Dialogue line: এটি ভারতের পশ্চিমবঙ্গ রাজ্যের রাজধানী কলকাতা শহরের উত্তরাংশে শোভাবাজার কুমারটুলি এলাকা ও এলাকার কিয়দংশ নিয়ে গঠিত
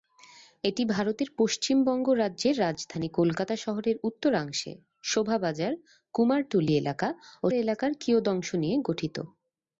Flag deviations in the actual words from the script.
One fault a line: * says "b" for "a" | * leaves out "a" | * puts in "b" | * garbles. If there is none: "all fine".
all fine